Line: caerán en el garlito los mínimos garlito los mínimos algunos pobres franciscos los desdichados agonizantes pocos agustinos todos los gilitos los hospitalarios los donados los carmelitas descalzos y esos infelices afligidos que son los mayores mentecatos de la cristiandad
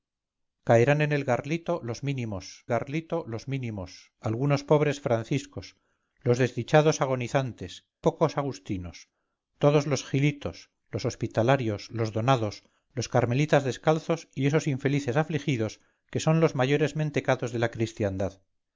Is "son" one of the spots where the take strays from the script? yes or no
no